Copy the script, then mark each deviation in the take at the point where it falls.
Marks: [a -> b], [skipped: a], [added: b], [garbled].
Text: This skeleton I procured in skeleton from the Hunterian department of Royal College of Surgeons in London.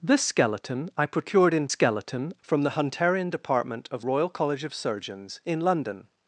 This skeleton I procured in skeleton from the Hunterian department of Royal College of Surgeons in London.